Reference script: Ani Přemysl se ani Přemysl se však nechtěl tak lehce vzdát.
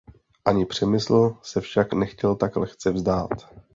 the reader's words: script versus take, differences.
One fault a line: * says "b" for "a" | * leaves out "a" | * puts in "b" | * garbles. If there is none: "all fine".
* leaves out "ani Přemysl se"